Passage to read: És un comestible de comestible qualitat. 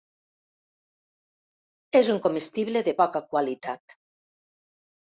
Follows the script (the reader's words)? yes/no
no